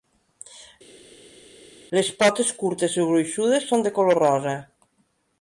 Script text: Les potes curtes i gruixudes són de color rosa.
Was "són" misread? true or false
false